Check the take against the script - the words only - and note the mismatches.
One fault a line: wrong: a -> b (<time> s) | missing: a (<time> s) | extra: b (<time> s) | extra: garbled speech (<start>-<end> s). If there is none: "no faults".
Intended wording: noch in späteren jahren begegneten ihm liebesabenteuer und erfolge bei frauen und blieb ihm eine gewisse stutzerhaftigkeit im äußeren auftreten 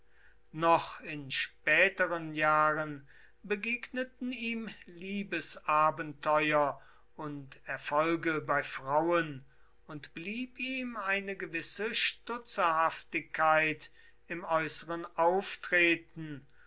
no faults